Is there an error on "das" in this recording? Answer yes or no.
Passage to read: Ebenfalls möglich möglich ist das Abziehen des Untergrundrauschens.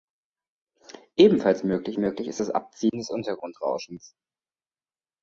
no